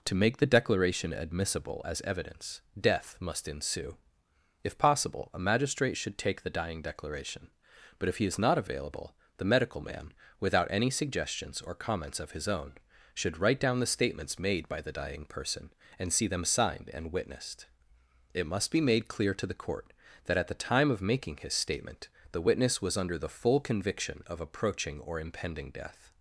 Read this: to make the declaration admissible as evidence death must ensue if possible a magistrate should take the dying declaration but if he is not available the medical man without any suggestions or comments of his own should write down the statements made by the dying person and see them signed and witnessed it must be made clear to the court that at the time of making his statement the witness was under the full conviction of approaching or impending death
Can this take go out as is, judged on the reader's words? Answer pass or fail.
pass